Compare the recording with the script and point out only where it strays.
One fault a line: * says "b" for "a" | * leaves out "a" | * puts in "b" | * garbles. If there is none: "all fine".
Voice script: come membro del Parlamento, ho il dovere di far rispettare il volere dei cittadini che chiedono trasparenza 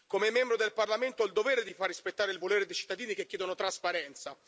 all fine